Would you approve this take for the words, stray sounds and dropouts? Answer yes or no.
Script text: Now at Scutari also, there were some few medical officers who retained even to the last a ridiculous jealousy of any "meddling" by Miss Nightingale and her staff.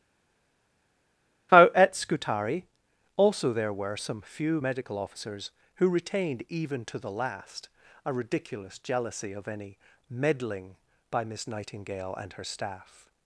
yes